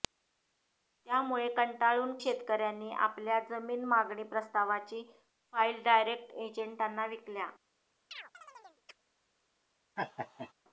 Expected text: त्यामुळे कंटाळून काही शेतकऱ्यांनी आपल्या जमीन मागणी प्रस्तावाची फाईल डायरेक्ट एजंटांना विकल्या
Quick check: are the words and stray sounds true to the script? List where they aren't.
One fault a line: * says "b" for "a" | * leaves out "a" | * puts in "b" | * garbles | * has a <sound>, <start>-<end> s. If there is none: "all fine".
* leaves out "काही"
* has a chirp, 8.1-9.0 s
* has a laugh, 10.0-10.5 s